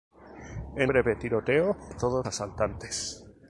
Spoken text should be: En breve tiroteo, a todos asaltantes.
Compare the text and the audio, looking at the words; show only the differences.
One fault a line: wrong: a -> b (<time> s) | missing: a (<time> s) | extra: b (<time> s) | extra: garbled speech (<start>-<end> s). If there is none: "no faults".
no faults